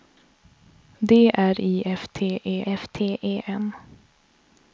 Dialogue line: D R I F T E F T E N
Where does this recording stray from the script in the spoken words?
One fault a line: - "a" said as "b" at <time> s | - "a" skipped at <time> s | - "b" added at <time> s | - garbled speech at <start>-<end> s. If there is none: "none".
none